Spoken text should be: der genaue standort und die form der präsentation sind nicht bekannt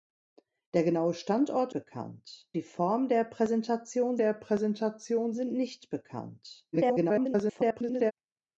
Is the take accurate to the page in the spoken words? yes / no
no